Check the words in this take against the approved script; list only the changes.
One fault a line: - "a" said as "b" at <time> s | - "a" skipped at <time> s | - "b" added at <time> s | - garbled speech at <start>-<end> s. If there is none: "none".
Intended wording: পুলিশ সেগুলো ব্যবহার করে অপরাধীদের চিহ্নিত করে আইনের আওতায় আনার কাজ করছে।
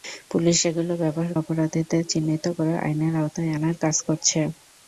- "করে" skipped at 1.3 s